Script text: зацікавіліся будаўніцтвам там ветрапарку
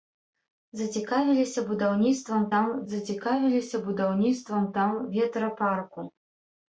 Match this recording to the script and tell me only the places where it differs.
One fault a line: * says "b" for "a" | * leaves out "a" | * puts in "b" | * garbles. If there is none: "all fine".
* puts in "зацікавіліся будаўніцтвам там"